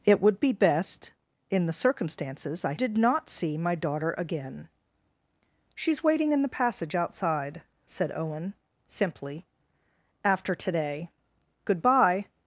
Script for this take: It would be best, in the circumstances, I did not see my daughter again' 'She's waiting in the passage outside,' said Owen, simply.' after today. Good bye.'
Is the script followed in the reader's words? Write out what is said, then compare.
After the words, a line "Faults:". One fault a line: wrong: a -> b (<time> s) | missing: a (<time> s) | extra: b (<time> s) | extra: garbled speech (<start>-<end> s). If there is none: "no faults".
It would be best, in the circumstances, I did not see my daughter again' 'She's waiting in the passage outside,' said Owen, simply.' after today. Good bye.'
Faults:
no faults